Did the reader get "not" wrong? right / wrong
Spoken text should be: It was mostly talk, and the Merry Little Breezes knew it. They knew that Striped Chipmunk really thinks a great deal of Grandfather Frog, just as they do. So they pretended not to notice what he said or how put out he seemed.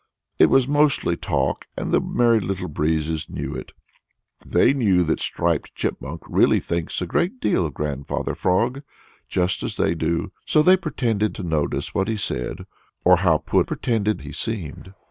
wrong